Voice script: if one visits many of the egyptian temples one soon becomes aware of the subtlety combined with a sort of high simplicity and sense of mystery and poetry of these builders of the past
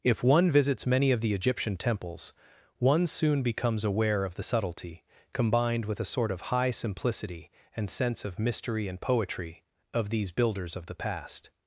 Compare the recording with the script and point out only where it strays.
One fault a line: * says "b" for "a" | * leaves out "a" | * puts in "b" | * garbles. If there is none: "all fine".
all fine